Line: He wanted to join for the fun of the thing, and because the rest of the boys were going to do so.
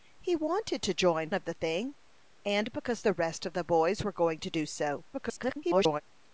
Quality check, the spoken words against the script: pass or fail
fail